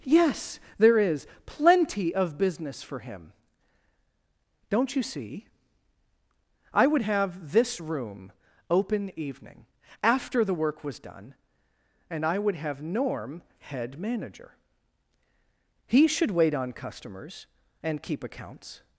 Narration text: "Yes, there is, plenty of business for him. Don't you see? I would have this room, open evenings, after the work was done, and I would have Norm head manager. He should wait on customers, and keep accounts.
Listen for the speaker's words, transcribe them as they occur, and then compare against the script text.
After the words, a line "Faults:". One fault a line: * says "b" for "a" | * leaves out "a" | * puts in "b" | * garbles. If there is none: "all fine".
"Yes, there is, plenty of business for him. Don't you see? I would have this room, open evening, after the work was done, and I would have Norm head manager. He should wait on customers, and keep accounts.
Faults:
* says "evening" for "evenings"